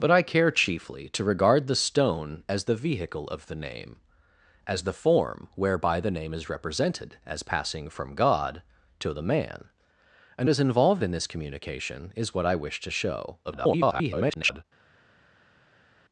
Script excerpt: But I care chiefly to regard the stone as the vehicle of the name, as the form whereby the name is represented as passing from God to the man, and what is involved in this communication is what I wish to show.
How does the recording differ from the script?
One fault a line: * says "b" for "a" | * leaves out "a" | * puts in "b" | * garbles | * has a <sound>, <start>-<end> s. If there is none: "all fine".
* leaves out "what"
* garbles